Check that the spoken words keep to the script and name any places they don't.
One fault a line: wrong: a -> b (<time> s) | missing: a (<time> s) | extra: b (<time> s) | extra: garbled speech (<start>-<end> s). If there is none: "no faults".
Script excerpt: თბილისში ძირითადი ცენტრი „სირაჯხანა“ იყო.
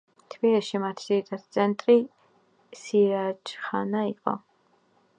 extra: მათი (0.8 s)